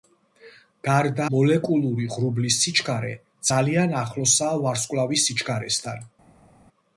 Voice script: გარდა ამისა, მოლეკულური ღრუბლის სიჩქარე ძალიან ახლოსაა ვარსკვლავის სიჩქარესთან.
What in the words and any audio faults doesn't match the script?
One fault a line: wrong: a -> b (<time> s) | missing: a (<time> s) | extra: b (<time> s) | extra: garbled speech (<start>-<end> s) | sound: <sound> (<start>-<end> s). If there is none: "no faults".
missing: ამისა (1.3 s)